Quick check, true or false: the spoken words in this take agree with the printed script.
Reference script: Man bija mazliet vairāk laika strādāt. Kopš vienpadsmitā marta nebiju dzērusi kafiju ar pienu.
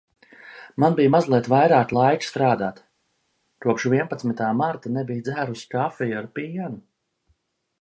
true